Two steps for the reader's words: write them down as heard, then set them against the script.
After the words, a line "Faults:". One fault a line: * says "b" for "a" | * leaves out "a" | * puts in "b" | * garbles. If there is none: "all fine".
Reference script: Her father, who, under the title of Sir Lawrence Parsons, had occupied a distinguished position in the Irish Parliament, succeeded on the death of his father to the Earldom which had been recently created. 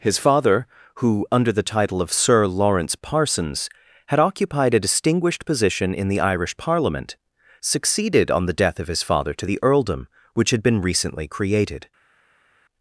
His father, who, under the title of Sir Lawrence Parsons, had occupied a distinguished position in the Irish Parliament, succeeded on the death of his father to the Earldom which had been recently created.
Faults:
* says "His" for "Her"